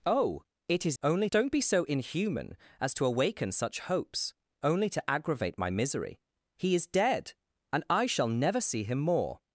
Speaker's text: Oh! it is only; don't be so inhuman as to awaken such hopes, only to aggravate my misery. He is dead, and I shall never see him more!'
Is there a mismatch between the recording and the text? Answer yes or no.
no